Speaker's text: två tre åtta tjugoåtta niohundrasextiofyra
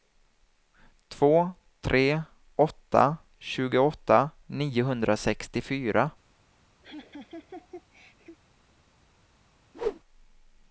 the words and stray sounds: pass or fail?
fail